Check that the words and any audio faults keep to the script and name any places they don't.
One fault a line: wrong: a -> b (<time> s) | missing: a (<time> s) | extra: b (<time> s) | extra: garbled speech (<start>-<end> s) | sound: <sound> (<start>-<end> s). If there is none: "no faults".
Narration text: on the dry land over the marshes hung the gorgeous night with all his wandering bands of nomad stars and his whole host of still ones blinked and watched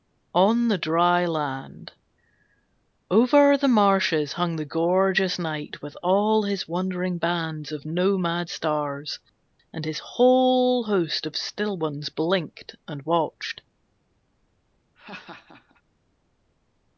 sound: laugh (15.0-15.8 s)